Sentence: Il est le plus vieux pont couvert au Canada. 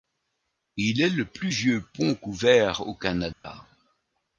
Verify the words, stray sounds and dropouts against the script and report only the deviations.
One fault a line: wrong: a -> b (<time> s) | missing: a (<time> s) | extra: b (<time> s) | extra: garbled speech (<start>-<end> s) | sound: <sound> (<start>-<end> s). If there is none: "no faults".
sound: dropout (3.3-3.4 s)